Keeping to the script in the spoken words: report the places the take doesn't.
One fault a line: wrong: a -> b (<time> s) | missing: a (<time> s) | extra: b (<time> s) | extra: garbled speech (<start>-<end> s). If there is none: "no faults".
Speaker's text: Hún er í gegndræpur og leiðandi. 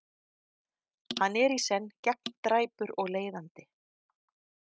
wrong: Hún -> Hann (1.2 s)
extra: senn (1.6 s)